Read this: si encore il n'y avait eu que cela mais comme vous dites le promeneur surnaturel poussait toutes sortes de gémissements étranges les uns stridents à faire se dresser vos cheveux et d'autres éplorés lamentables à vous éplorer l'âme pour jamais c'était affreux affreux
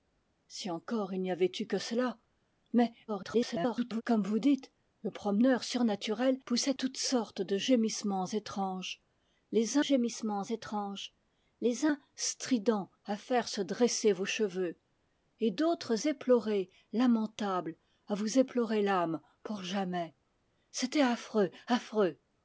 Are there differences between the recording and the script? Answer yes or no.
yes